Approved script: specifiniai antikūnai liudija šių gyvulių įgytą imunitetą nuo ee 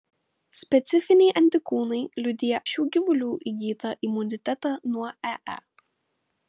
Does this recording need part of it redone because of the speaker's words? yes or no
no